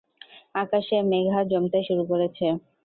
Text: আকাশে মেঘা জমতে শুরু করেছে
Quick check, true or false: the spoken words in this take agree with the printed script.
true